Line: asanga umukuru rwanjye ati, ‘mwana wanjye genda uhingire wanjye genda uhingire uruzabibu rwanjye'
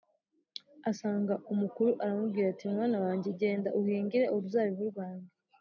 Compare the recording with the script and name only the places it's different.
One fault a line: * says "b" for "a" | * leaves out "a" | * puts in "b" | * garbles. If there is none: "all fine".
* says "aramubwira" for "rwanjye"
* leaves out "wanjye genda uhingire"